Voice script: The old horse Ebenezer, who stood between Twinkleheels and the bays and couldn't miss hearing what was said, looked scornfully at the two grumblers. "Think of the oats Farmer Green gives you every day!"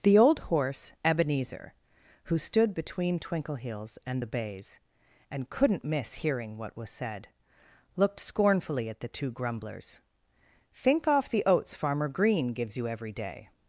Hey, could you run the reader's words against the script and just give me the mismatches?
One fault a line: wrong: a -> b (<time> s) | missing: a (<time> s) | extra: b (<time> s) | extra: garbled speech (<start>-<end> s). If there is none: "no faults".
wrong: of -> off (11.1 s)